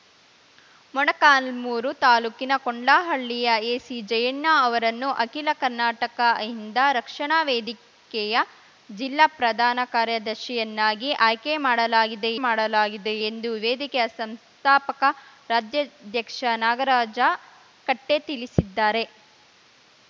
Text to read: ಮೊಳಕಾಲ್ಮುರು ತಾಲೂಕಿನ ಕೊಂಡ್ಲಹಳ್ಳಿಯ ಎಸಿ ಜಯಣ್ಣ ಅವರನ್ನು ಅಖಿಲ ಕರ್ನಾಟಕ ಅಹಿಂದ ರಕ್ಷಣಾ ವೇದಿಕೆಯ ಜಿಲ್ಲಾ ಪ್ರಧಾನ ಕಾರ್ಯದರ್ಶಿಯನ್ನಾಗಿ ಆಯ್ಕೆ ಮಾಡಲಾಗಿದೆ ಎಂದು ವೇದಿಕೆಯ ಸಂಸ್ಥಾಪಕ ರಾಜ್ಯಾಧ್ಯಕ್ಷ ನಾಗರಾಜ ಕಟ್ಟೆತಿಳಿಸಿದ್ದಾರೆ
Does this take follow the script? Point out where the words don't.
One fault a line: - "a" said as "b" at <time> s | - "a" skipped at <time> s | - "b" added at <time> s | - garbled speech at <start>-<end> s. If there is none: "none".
- "ಮಾಡಲಾಗಿದೆ" added at 12.4 s